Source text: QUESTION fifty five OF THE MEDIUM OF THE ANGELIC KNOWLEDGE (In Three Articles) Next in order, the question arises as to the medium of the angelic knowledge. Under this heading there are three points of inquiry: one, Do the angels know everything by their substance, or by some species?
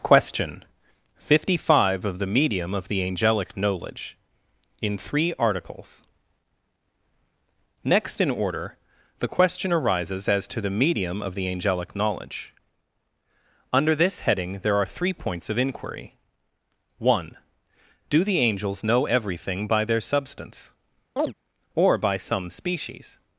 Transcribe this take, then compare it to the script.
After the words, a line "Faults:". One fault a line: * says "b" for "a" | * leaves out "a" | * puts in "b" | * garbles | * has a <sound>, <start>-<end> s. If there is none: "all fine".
QUESTION fifty five OF THE MEDIUM OF THE ANGELIC KNOWLEDGE (In Three Articles) Next in order, the question arises as to the medium of the angelic knowledge. Under this heading there are three points of inquiry: one, Do the angels know everything by their substance, or by some species?
Faults:
* has a chirp, 21.2-21.3 s